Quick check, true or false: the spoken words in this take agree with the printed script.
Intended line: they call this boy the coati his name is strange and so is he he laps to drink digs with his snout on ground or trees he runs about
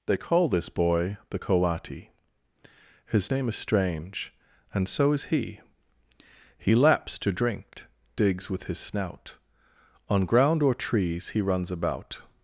true